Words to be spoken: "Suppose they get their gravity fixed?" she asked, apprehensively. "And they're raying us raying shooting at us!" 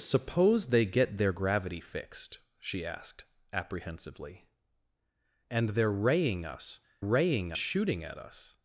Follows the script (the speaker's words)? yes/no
yes